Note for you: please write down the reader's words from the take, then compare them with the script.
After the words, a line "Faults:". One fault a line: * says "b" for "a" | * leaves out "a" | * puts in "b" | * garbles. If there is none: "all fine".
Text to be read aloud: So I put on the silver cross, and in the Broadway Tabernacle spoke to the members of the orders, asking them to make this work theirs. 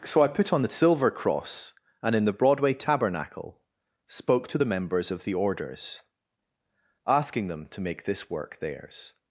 So I put on the silver cross, and in the Broadway Tabernacle spoke to the members of the orders, asking them to make this work theirs.
Faults:
all fine